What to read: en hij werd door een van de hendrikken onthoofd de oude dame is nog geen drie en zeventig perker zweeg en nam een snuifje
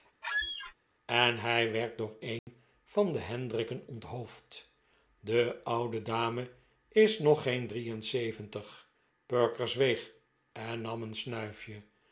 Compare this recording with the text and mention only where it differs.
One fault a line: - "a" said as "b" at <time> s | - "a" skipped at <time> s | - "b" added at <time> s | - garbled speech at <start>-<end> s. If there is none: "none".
none